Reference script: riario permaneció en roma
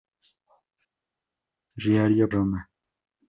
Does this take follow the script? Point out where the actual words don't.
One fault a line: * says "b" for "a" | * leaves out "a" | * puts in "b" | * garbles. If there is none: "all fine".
* leaves out "permaneció en"